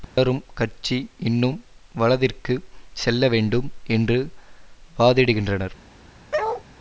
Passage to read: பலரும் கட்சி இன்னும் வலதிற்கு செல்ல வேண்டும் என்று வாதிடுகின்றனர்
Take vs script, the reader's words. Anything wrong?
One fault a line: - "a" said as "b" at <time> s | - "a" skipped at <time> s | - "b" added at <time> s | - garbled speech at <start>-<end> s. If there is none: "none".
none